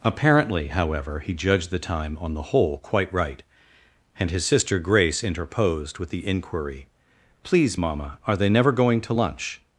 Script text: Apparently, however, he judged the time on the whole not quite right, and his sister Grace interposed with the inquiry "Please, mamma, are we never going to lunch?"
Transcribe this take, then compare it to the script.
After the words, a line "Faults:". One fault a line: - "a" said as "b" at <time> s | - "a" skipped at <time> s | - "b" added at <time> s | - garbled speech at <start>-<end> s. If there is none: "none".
Apparently, however, he judged the time on the whole quite right, and his sister Grace interposed with the inquiry "Please, mamma, are they never going to lunch?"
Faults:
- "not" skipped at 2.8 s
- "we" said as "they" at 8.4 s